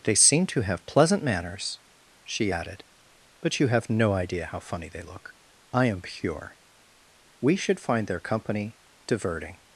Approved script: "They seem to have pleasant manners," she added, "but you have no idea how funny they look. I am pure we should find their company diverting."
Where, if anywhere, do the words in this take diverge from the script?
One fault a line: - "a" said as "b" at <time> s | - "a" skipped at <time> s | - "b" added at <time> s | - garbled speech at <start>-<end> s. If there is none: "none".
none